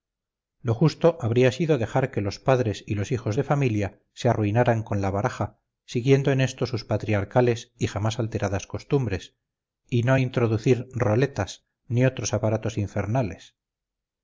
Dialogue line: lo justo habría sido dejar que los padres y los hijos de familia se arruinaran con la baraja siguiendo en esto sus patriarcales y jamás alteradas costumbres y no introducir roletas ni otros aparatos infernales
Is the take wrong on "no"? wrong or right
right